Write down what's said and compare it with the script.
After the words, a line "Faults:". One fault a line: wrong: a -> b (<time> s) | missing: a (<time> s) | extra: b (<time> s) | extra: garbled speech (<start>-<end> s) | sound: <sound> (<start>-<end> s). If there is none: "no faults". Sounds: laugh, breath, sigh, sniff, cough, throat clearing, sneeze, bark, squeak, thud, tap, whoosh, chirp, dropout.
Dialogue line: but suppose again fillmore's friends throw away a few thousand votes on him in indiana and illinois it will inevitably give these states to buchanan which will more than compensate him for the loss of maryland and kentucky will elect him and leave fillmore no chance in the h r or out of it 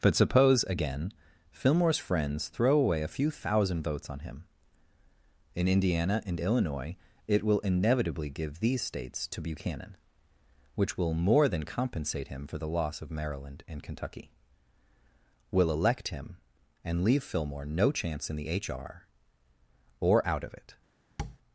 but suppose again fillmore's friends throw away a few thousand votes on him in indiana and illinois it will inevitably give these states to buchanan which will more than compensate him for the loss of maryland and kentucky will elect him and leave fillmore no chance in the h r or out of it
Faults:
sound: tap (21.2-21.4 s)